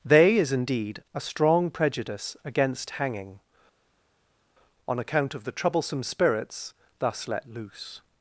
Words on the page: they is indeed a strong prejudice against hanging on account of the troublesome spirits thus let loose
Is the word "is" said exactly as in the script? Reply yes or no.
yes